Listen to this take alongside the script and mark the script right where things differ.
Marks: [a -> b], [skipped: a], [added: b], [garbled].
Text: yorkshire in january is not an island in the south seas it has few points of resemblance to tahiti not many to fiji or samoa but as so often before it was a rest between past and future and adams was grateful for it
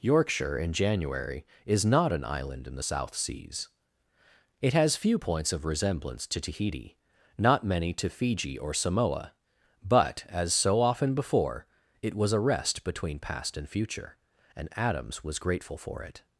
yorkshire in january is not an island in the south seas it has few points of resemblance to tahiti not many to fiji or samoa but as so often before it was a rest between past and future and adams was grateful for it